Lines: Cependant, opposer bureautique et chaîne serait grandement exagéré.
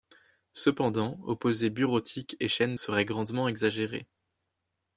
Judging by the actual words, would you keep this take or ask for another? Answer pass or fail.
pass